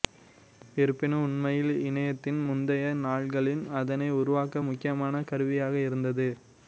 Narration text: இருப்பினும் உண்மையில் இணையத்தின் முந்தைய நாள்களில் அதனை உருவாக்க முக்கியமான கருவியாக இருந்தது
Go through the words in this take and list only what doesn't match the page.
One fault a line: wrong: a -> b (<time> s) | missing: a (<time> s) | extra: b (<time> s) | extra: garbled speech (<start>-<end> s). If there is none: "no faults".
no faults